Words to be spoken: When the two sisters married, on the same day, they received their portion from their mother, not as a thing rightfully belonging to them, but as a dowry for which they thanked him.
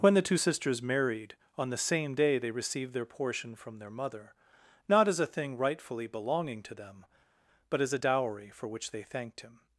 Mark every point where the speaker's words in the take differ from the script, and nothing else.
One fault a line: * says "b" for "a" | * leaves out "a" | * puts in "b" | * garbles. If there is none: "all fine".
all fine